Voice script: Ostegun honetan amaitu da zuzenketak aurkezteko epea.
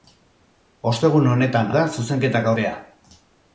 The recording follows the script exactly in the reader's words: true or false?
false